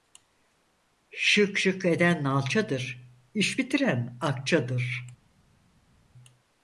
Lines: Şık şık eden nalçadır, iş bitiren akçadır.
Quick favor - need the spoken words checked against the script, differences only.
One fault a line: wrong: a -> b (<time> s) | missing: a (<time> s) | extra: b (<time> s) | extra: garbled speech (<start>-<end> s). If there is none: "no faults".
no faults